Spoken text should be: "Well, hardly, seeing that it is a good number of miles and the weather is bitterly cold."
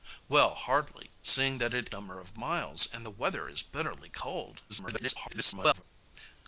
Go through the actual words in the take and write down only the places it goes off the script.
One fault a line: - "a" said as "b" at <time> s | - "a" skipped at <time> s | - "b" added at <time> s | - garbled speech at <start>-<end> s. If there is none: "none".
- "is a good" skipped at 1.9 s
- garbled speech at 4.7-5.8 s